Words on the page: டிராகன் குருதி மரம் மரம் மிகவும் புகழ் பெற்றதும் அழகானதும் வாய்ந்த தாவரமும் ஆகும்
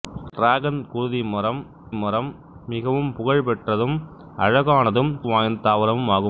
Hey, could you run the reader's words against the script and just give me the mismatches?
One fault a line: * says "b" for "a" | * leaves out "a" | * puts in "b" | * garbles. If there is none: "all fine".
all fine